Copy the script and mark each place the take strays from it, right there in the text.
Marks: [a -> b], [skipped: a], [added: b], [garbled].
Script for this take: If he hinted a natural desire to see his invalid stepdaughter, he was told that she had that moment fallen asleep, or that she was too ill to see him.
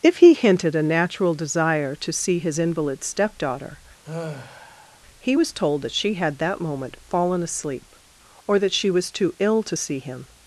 If he hinted a natural desire to see his invalid stepdaughter, he was told that she had that moment fallen asleep, or that she was too ill to see him.